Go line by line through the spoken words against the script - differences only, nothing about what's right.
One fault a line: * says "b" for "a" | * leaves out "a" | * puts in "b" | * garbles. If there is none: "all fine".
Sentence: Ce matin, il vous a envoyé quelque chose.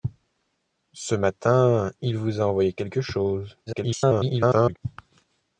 * garbles